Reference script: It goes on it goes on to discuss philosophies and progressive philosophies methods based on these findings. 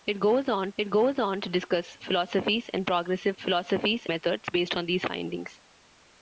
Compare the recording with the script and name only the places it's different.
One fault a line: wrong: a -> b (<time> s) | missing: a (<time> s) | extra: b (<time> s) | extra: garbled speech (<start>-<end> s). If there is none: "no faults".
no faults